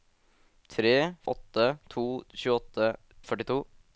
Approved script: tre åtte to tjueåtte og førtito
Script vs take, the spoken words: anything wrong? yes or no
no